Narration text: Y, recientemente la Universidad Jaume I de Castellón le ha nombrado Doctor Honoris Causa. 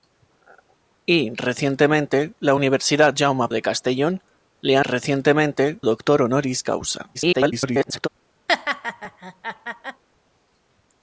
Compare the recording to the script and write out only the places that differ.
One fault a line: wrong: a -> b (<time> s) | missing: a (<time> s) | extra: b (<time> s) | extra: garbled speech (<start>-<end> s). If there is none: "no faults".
missing: I (3.5 s)
wrong: nombrado -> recientemente (4.8 s)
extra: garbled speech (7.1-8.1 s)